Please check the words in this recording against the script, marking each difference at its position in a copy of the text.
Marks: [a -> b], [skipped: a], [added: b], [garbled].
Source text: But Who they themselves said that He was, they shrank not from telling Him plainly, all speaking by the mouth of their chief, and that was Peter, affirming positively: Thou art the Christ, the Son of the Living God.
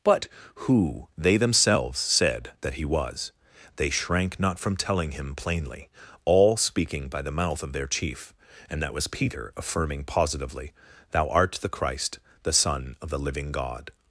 But Who they themselves said that He was, they shrank not from telling Him plainly, all speaking by the mouth of their chief, and that was Peter, affirming positively: Thou art the Christ, the Son of the Living God.